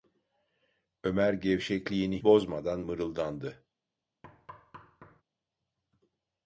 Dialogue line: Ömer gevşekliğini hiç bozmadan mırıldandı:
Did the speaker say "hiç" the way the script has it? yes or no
no